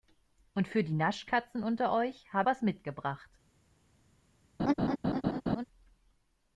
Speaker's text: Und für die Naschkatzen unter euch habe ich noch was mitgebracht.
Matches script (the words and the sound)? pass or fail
fail